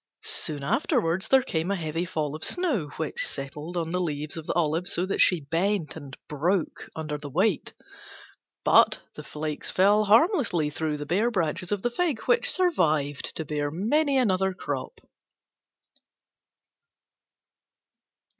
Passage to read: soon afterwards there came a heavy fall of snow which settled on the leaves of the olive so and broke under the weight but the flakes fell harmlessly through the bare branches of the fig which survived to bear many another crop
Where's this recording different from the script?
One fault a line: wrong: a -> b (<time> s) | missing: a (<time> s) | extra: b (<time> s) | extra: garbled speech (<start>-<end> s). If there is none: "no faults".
extra: that she bent (5.0 s)